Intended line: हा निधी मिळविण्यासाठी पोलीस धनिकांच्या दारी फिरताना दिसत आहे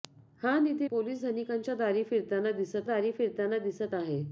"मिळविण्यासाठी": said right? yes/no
no